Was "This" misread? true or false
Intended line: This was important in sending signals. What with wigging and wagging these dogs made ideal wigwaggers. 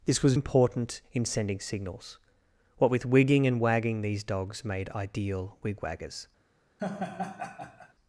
false